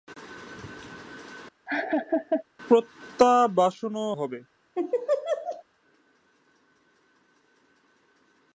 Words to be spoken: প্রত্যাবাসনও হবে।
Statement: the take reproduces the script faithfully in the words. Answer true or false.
true